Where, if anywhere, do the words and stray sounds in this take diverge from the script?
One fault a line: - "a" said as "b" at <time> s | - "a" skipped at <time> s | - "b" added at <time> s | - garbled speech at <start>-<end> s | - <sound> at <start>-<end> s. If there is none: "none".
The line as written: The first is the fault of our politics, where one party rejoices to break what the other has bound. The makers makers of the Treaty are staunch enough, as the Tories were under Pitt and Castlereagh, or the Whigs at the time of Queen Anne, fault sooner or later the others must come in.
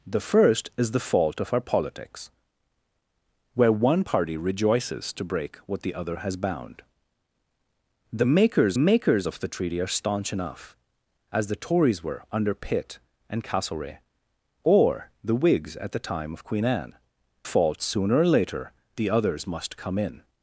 none